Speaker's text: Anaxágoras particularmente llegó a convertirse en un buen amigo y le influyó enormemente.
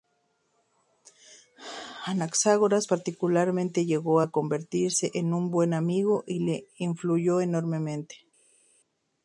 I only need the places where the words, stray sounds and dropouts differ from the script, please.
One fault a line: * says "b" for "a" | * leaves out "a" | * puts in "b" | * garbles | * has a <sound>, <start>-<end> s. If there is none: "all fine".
all fine